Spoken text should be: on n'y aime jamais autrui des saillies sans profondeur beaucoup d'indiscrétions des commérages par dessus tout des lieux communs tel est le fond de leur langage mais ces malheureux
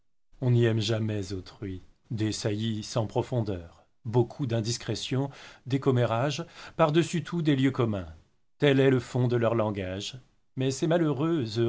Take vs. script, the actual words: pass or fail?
pass